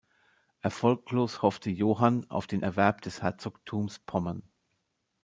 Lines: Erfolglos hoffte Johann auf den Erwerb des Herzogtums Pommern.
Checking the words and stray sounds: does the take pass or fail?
pass